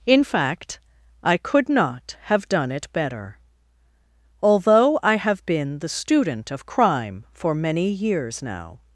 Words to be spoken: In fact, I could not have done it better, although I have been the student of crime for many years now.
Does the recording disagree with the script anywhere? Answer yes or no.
no